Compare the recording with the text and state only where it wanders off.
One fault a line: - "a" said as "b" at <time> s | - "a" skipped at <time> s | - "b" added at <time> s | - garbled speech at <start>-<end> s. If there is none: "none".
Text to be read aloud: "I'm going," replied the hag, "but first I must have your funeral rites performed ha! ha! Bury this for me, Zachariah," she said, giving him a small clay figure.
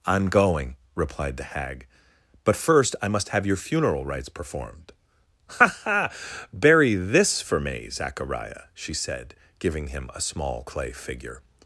none